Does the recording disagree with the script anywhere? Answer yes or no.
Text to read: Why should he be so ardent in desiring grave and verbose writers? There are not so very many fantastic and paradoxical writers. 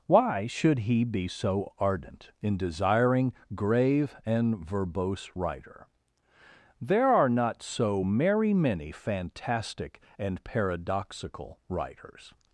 yes